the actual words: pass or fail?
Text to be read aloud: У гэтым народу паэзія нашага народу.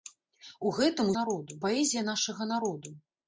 pass